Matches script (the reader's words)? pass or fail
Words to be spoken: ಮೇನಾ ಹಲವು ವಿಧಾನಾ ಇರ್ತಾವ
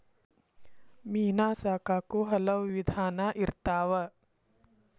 fail